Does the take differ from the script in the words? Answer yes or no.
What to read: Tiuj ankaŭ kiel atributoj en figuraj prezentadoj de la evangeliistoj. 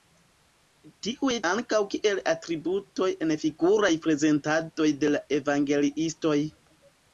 no